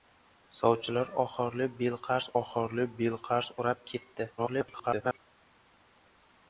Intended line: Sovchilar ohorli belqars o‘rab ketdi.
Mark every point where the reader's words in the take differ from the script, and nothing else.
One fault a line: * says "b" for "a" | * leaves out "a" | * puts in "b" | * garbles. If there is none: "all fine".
* puts in "ohorli belqars"
* garbles